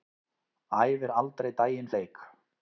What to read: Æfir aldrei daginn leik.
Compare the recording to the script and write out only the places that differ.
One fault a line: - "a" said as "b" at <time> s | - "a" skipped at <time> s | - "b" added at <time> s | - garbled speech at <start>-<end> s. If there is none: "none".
none